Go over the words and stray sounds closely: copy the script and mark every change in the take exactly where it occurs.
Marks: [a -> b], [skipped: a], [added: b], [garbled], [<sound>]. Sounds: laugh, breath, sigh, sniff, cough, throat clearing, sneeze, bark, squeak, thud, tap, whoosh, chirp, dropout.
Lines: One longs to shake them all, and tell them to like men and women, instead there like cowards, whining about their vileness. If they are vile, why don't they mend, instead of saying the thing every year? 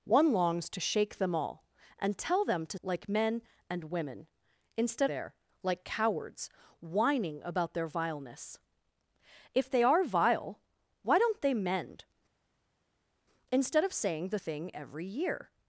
One longs to shake them all, and tell them to like men and women, instead there like cowards, whining about their vileness. If they are vile, why don't they mend, instead of saying the thing every year?